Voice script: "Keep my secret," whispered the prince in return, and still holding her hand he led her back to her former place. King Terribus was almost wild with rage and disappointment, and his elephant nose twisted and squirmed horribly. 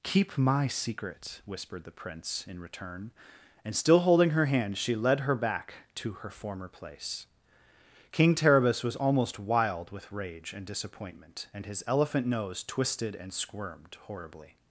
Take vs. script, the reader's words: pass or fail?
fail